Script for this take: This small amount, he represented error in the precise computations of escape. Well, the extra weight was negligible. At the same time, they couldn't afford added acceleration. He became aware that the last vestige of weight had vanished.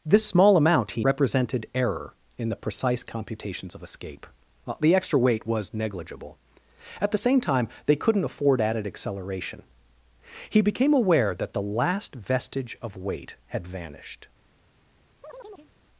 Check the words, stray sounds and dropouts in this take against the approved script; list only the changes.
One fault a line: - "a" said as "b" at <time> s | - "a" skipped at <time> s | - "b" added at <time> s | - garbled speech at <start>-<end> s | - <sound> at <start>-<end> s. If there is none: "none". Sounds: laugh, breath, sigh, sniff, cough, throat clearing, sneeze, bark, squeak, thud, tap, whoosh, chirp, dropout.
- chirp at 15.2-15.7 s